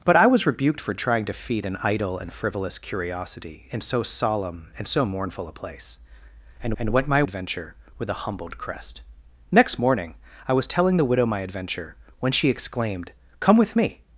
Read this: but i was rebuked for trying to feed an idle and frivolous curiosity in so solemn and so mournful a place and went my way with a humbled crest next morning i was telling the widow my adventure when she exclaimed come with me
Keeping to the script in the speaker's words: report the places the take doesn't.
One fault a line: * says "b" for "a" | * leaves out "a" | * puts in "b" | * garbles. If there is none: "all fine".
* puts in "and"
* says "adventure" for "way"